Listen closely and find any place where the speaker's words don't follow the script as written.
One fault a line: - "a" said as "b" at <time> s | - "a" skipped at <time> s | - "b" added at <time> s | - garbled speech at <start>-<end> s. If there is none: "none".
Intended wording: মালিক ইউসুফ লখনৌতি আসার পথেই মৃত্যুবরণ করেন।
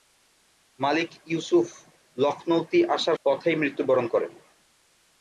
none